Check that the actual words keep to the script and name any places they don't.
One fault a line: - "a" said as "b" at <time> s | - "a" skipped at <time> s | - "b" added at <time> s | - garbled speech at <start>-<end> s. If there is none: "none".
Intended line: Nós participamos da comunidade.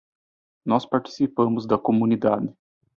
none